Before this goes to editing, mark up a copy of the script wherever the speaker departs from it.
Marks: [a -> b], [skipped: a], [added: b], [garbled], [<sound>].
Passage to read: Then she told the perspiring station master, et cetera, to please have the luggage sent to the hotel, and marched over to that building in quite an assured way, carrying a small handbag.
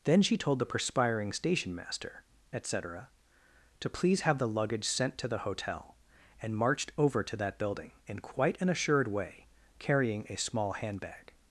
Then she told the perspiring station master, et cetera, to please have the luggage sent to the hotel, and marched over to that building in quite an assured way, carrying a small handbag.